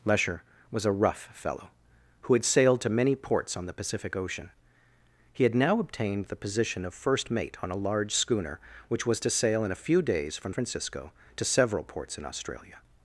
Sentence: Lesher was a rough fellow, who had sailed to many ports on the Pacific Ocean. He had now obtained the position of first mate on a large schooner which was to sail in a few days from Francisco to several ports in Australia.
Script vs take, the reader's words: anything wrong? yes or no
no